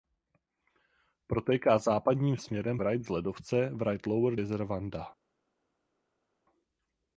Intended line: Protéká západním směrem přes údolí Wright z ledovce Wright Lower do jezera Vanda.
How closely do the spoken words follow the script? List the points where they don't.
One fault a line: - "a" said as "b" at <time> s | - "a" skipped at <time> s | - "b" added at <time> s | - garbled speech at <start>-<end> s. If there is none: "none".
- "přes údolí" skipped at 2.8 s
- "do" skipped at 4.4 s